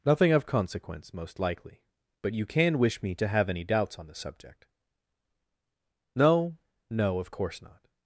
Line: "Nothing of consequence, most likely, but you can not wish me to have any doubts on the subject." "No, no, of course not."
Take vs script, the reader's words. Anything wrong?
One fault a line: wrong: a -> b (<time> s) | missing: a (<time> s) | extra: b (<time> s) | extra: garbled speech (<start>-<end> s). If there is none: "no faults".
missing: not (2.8 s)